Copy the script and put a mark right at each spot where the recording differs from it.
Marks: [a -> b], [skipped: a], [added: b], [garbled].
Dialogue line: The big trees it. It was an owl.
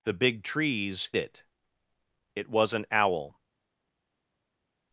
The big trees it. It was an owl.